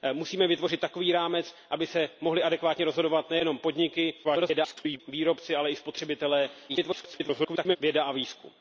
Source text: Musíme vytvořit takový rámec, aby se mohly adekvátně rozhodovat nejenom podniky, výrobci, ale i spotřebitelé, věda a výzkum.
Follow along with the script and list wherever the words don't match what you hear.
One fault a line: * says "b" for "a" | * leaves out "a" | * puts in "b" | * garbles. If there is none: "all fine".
* garbles
* garbles